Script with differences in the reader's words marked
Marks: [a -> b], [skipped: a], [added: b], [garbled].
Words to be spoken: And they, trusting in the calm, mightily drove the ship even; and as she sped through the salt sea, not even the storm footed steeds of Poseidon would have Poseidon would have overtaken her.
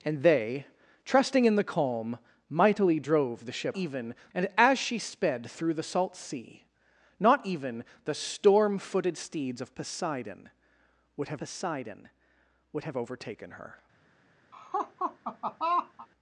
And they, trusting in the calm, mightily drove the ship even; and as she sped through the salt sea, not even the storm footed steeds of Poseidon would have Poseidon would have overtaken her.